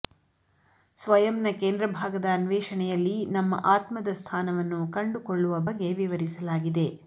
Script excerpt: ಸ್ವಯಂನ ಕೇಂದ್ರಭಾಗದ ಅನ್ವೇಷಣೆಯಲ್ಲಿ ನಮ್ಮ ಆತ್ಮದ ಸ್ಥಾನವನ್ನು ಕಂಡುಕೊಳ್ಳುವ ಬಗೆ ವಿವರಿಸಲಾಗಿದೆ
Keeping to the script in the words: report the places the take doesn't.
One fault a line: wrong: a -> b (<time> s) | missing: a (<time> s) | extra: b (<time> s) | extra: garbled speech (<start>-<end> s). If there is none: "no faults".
no faults